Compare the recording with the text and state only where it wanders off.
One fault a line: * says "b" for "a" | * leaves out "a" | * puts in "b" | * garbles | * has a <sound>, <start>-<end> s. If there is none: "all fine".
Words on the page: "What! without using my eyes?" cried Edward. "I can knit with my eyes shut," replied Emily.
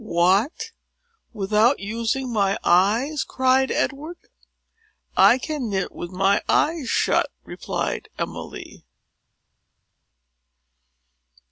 all fine